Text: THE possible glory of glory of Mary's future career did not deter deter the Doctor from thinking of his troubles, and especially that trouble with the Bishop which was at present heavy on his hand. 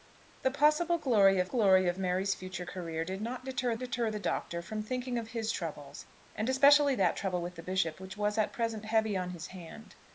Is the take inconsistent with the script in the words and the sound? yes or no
no